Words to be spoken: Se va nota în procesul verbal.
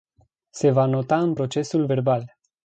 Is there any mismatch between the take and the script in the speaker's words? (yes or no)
no